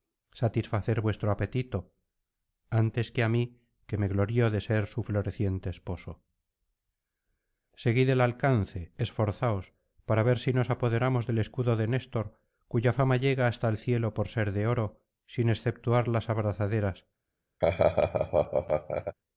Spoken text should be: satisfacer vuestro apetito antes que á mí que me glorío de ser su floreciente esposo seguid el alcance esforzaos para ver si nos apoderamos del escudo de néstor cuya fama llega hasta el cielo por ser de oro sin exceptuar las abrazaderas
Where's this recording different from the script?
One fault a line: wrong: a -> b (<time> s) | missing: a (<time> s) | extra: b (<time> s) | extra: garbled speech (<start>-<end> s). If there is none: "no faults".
no faults